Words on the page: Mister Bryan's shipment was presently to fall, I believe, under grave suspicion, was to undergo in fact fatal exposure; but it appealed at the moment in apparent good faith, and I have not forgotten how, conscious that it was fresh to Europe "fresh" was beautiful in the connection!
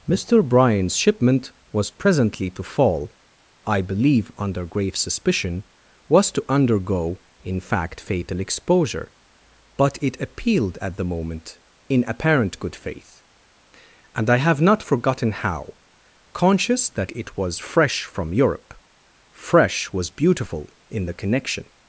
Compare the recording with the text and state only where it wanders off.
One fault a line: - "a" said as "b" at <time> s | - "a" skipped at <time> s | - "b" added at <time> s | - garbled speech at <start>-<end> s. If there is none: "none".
- "to" said as "from" at 18.0 s